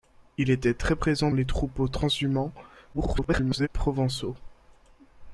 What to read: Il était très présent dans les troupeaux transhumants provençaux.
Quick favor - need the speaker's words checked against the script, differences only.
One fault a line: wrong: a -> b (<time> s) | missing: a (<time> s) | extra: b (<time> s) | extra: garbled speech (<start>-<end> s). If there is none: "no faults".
missing: dans (1.3 s)
extra: garbled speech (2.9-3.7 s)